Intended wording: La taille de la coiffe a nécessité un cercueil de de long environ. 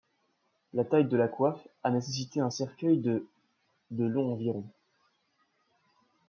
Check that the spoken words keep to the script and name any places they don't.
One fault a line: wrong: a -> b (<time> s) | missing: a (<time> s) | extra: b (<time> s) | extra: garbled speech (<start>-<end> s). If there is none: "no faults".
no faults